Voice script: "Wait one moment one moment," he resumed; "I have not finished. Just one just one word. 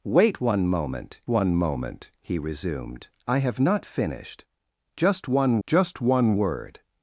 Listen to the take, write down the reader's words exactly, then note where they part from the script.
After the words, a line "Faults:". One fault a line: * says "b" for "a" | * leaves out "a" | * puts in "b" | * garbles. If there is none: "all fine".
"Wait one moment one moment," he resumed; "I have not finished. Just one just one word.
Faults:
all fine